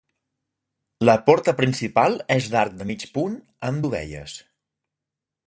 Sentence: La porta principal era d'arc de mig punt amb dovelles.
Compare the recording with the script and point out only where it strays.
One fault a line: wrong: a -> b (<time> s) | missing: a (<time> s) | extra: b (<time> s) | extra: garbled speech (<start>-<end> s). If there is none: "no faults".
wrong: era -> és (2.4 s)